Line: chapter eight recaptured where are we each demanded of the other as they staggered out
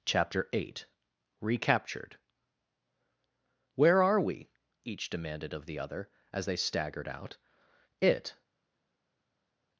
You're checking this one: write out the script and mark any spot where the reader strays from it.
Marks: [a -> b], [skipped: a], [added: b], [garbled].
chapter eight recaptured where are we each demanded of the other as they staggered out [added: it]